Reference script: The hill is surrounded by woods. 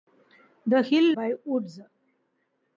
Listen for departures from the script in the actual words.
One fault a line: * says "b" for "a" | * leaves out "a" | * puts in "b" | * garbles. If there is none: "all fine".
* leaves out "is surrounded"